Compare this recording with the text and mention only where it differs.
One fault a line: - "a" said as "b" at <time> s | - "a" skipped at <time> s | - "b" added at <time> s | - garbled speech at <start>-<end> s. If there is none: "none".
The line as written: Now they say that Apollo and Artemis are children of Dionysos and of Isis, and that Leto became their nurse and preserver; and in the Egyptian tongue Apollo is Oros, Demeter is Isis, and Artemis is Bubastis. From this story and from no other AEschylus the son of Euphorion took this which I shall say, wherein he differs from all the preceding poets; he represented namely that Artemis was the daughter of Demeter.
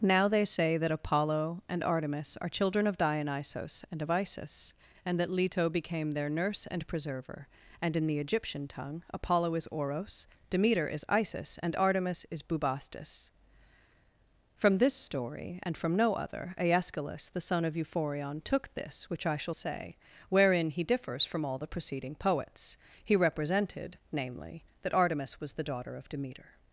none